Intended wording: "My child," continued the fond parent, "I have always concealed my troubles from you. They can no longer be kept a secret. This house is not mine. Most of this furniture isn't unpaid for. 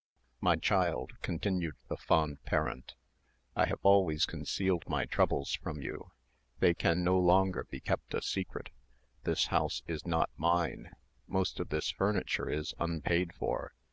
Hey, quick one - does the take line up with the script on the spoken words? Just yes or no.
no